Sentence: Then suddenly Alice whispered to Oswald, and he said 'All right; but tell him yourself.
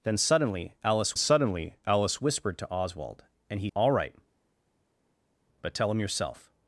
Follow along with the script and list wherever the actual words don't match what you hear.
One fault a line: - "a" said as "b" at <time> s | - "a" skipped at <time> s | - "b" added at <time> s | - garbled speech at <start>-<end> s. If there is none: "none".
- "suddenly Alice" added at 1.2 s
- "said" skipped at 3.7 s